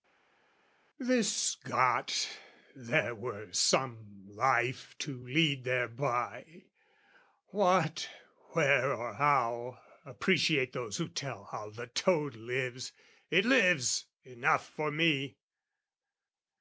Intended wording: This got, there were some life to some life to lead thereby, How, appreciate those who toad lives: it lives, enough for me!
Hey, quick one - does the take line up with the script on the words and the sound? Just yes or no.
no